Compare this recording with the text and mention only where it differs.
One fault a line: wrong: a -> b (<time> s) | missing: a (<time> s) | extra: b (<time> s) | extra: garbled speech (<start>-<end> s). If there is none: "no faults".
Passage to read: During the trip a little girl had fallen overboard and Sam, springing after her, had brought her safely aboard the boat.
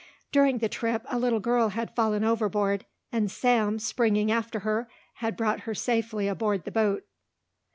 no faults